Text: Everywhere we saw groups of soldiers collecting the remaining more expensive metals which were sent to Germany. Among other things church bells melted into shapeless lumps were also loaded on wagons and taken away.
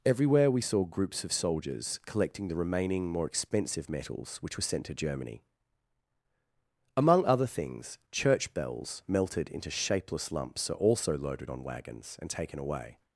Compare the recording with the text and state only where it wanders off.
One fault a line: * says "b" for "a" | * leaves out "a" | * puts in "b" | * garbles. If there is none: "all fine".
* says "are" for "were"